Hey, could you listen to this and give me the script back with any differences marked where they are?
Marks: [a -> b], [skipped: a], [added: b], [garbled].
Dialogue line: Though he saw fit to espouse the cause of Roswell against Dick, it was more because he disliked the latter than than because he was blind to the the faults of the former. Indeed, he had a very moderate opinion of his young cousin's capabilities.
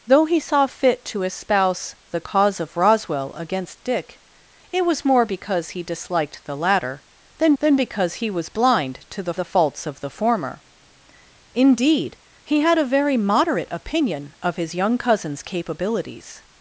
Though he saw fit to espouse the cause of Roswell against Dick, it was more because he disliked the latter than than because he was blind to the the faults of the former. Indeed, he had a very moderate opinion of his young cousin's capabilities.